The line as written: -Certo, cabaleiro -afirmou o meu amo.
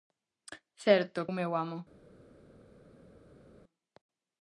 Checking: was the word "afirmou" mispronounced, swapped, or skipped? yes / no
yes